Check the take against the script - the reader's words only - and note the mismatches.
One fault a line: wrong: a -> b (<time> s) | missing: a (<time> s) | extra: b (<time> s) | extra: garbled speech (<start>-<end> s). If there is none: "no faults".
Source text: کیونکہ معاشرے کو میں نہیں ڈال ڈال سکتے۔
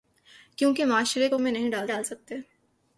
no faults